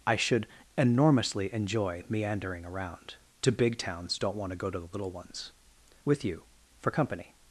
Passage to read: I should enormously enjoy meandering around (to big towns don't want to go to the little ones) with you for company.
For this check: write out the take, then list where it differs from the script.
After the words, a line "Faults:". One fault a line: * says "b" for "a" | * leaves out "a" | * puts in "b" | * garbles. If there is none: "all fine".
I should enormously enjoy meandering around (to big towns don't want to go to the little ones) with you for company.
Faults:
all fine